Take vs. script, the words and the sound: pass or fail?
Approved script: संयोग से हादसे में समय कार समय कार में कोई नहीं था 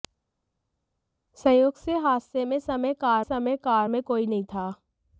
pass